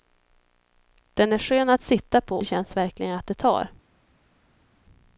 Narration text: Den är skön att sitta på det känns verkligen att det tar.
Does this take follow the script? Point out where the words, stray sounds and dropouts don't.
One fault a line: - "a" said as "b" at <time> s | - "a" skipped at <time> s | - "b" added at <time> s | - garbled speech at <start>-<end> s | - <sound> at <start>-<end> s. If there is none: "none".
none